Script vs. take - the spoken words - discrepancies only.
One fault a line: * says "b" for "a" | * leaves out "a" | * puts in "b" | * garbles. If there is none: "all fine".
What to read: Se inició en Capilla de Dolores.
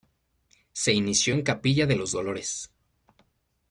* puts in "los"